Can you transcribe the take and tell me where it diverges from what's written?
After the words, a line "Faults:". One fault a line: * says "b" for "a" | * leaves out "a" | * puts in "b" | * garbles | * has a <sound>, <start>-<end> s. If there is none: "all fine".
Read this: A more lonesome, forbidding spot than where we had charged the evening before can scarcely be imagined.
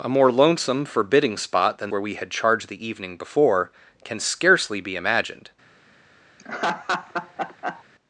A more lonesome, forbidding spot than where we had charged the evening before can scarcely be imagined.
Faults:
* has a laugh, 6.4-7.8 s